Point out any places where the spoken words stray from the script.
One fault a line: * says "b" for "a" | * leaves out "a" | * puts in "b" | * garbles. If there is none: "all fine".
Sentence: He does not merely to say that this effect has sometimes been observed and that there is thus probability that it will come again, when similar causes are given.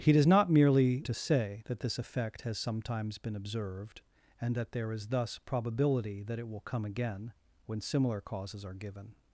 all fine